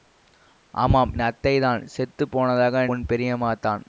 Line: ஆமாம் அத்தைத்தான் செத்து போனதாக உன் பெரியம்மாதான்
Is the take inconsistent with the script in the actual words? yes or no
no